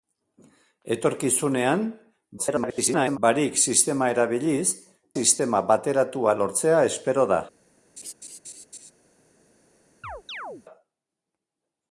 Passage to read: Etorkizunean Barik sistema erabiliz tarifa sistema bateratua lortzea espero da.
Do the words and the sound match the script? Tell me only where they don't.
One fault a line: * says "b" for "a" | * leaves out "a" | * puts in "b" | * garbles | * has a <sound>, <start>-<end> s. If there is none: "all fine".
* garbles
* leaves out "tarifa"
* has a laugh, 8.0-8.9 s
* has a chirp, 10.0-10.6 s